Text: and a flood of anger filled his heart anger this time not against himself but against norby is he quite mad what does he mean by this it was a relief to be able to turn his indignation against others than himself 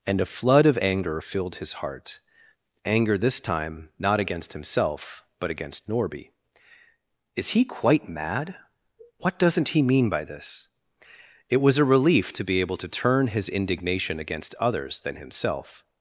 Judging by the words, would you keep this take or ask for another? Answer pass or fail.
fail